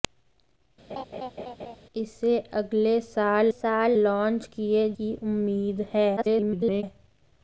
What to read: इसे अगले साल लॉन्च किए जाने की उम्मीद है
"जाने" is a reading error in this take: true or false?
true